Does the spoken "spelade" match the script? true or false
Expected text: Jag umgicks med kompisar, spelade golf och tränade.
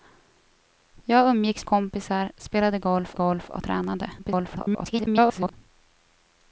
true